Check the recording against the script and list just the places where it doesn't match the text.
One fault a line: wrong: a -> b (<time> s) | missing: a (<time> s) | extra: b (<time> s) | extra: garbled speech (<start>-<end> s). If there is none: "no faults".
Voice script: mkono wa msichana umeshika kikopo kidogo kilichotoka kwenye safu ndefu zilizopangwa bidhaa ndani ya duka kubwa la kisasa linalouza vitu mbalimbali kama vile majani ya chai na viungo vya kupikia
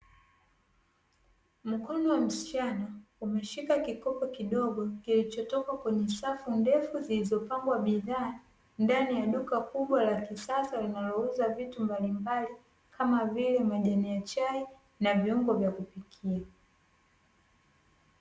no faults